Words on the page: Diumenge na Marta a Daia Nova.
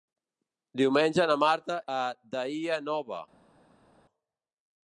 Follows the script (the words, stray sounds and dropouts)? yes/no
yes